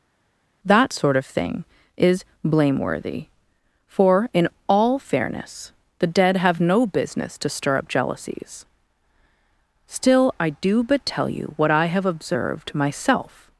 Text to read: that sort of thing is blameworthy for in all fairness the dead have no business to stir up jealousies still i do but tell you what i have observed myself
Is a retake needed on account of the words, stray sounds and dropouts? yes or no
no